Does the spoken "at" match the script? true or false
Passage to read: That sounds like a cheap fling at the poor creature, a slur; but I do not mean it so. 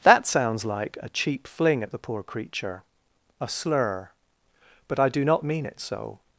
true